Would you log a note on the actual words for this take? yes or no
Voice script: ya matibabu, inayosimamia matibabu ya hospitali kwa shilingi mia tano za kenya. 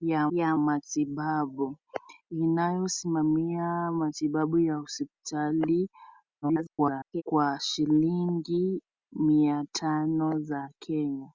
yes